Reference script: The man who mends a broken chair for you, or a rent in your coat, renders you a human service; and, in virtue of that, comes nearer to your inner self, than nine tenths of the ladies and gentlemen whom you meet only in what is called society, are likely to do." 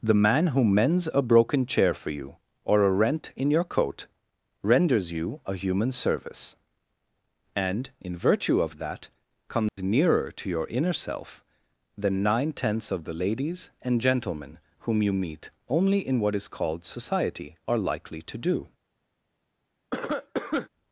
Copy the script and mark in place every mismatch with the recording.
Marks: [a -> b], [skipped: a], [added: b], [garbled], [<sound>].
The man who mends a broken chair for you, or a rent in your coat, renders you a human service; and, in virtue of that, comes [dropout] nearer to your inner self, than nine tenths of the ladies and gentlemen whom you meet only in what is called society, are likely to do." [cough]